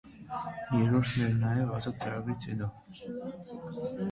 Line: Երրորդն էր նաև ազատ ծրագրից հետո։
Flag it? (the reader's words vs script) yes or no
no